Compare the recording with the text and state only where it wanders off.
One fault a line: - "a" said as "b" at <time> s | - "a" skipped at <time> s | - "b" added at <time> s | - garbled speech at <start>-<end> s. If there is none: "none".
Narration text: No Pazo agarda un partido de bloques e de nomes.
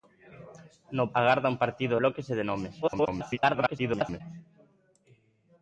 - "Pazo" skipped at 1.1 s
- "de" skipped at 2.0 s
- garbled speech at 2.8-4.2 s